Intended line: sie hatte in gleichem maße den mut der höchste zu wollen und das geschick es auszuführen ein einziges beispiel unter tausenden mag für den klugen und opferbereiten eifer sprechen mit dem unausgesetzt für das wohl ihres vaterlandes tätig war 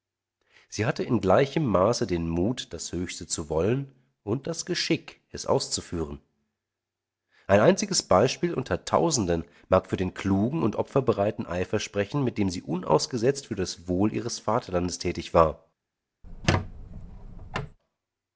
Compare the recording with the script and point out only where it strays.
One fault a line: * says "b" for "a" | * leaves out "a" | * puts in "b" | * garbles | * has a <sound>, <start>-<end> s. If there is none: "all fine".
* says "das" for "der"
* puts in "sie"
* has a squeak, 16.2-17.8 s